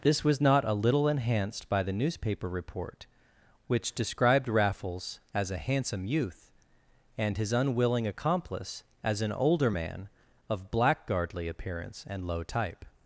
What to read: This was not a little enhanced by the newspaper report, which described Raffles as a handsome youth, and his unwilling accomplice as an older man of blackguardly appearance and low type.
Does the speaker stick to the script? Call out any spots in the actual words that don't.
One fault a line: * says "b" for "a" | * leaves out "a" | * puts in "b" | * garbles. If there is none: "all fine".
all fine